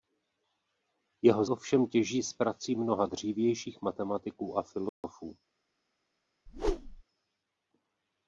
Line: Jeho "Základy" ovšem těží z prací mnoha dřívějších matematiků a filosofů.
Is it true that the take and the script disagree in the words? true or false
true